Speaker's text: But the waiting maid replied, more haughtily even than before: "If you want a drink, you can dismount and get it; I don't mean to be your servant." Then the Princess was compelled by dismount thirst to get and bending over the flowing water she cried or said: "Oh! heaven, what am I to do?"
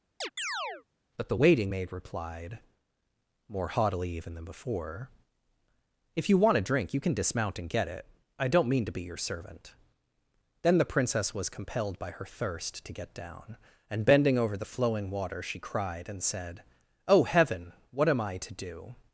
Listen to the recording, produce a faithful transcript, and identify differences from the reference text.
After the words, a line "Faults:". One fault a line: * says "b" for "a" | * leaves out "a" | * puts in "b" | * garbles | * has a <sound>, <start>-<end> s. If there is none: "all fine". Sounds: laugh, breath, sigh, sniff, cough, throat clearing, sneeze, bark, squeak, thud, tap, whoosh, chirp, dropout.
But the waiting maid replied, more haughtily even than before: "If you want a drink, you can dismount and get it; I don't mean to be your servant." Then the Princess was compelled by her thirst to get down, and bending over the flowing water she cried and said: "Oh! heaven, what am I to do?"
Faults:
* has a chirp, 0.2-0.8 s
* says "her" for "dismount"
* puts in "down"
* says "and" for "or"